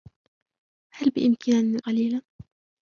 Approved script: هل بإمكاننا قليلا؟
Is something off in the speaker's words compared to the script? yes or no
no